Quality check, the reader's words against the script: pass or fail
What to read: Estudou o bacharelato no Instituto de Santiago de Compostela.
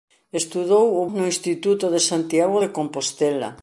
fail